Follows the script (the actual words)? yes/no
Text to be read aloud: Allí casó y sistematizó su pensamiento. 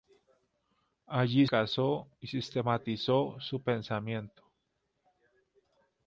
yes